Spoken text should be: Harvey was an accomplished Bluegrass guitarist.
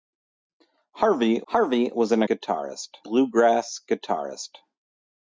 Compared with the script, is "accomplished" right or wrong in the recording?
wrong